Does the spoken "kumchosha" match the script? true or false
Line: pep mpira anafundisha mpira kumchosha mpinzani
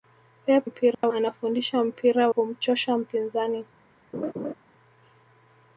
true